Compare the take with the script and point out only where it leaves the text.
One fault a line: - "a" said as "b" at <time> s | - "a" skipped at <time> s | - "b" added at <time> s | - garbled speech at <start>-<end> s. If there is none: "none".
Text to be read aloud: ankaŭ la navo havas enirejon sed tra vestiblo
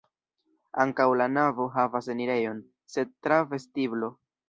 none